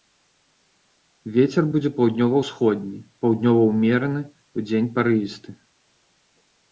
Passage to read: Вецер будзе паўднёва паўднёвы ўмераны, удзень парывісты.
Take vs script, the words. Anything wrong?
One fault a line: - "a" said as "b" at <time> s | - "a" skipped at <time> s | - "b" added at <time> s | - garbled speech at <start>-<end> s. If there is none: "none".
- "ўсходні" added at 2.4 s